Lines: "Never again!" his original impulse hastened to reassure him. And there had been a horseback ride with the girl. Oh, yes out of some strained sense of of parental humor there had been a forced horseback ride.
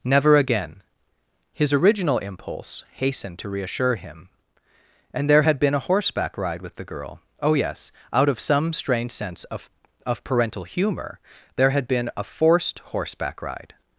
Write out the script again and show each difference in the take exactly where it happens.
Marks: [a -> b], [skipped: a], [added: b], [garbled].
"Never again!" his original impulse hastened to reassure him. And there had been a horseback ride with the girl. Oh, yes out of some [strained -> strange] sense of of parental humor there had been a forced horseback ride.